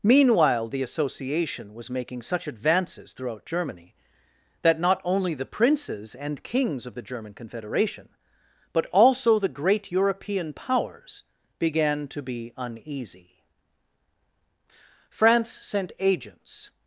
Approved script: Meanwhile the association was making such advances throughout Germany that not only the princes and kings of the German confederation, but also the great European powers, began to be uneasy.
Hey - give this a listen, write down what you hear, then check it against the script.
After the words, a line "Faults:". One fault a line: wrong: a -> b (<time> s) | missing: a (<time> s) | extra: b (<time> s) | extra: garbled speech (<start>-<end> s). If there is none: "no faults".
Meanwhile the association was making such advances throughout Germany that not only the princes and kings of the German confederation, but also the great European powers, began to be uneasy. France sent agents
Faults:
extra: France sent agents (15.1 s)